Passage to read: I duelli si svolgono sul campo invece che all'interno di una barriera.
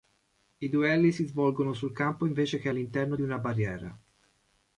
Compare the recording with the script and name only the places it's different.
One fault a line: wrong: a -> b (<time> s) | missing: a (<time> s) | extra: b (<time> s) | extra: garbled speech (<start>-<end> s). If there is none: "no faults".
no faults